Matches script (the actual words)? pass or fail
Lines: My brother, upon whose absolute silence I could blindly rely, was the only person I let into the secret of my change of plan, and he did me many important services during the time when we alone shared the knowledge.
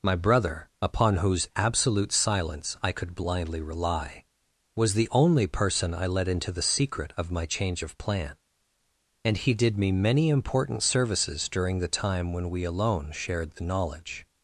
pass